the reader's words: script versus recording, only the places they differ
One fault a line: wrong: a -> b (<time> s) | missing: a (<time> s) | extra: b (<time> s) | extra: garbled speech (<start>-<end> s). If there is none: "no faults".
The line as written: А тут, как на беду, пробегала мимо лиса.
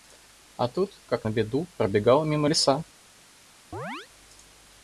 no faults